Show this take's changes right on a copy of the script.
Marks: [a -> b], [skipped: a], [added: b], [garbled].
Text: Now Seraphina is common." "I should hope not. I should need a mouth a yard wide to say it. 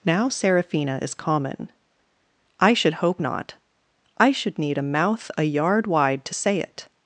Now Seraphina is common." "I should hope not. I should need a mouth a yard wide to say it.